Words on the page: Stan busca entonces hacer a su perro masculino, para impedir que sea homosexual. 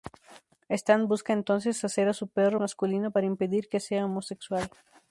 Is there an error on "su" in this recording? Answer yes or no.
no